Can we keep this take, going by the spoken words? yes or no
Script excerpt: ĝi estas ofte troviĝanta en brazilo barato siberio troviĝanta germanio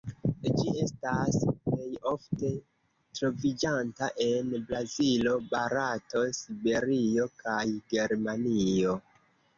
no